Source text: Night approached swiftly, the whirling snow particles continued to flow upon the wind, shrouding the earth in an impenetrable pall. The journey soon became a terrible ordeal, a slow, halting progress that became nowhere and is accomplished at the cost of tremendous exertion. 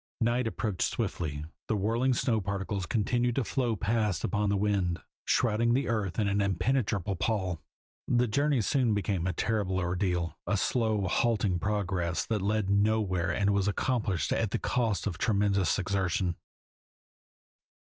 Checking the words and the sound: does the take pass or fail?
fail